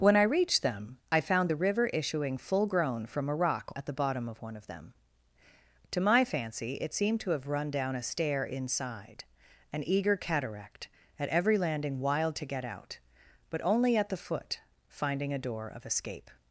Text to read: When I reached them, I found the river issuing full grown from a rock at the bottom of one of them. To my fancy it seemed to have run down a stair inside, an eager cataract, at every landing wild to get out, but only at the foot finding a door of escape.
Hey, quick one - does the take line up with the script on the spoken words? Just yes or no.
yes